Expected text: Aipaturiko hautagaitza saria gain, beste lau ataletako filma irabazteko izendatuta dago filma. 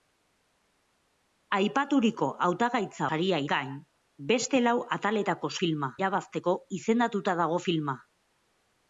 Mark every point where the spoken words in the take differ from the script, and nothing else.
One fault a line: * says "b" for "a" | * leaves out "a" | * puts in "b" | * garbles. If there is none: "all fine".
all fine